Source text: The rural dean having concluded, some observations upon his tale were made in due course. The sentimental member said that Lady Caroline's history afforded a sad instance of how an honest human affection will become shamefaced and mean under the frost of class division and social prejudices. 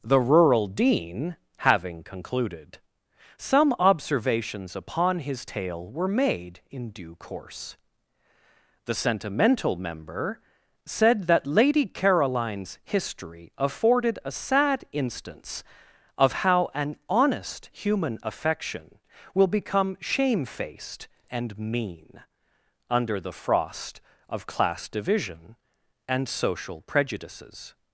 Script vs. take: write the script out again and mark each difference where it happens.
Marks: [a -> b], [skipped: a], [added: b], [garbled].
The rural dean having concluded, some observations upon his tale were made in due course. The sentimental member said that Lady Caroline's history afforded a sad instance of how an honest human affection will become shamefaced and mean under the frost of class division and social prejudices.